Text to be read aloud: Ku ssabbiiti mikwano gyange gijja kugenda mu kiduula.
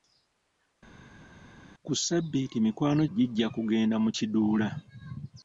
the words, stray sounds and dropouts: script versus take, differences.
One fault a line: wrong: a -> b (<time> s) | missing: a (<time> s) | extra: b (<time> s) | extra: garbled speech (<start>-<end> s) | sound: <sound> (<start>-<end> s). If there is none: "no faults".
missing: gyange (3.0 s)